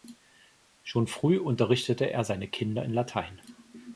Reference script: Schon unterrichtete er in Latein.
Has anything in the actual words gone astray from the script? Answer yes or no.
yes